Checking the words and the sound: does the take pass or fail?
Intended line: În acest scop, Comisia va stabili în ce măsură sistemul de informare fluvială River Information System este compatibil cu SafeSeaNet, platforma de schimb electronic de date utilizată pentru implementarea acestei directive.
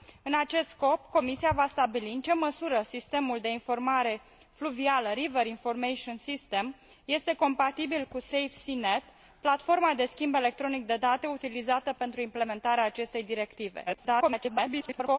fail